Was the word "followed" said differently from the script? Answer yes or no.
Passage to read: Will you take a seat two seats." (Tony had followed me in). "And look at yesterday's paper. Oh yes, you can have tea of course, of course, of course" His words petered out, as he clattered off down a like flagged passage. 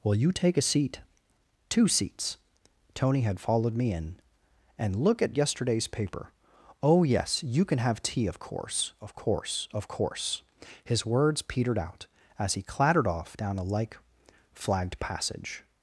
no